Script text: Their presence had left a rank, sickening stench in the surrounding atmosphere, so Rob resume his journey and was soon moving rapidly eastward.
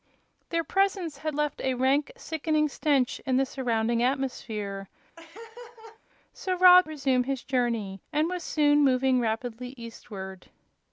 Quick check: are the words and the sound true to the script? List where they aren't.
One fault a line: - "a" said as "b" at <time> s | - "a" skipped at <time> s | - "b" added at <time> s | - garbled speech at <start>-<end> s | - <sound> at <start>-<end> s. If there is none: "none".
- laugh at 5.2-6.0 s